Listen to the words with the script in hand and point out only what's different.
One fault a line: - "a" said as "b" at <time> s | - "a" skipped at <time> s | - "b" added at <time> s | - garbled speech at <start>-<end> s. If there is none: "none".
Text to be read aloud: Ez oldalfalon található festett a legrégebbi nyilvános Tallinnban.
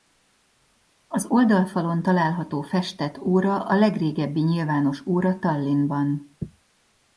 - "Ez" said as "Az" at 1.1 s
- "óra" added at 3.2 s
- "óra" added at 5.1 s